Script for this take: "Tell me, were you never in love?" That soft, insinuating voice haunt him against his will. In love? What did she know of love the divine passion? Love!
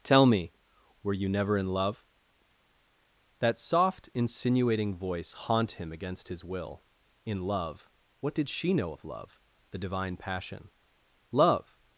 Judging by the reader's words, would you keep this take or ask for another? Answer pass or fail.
pass